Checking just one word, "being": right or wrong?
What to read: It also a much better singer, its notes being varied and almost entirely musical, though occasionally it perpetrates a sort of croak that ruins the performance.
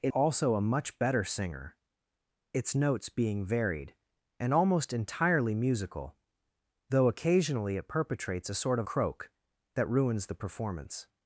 right